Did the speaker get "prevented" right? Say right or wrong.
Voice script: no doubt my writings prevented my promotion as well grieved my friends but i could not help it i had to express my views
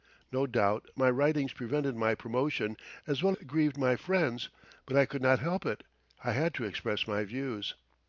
right